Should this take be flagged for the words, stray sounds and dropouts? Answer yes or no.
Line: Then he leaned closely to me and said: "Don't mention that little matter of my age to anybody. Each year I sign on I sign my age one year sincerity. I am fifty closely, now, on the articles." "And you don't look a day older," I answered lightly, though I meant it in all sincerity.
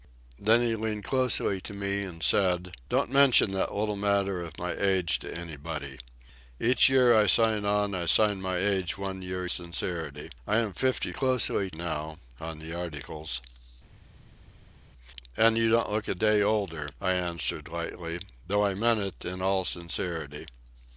no